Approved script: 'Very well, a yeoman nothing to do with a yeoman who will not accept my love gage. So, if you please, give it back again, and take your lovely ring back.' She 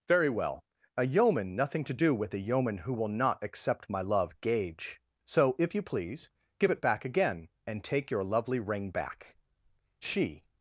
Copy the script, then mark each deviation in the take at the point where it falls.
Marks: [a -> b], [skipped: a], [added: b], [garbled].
'Very well, a yeoman nothing to do with a yeoman who will not accept my love gage. So, if you please, give it back again, and take your lovely ring back.' She